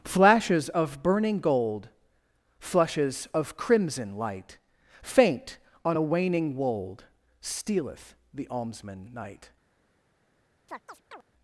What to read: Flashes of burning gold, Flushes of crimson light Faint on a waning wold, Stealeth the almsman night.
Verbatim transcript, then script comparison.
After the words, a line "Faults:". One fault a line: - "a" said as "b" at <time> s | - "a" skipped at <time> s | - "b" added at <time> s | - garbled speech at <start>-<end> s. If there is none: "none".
Flashes of burning gold, Flushes of crimson light Faint on a waning wold, Stealeth the almsman night.
Faults:
none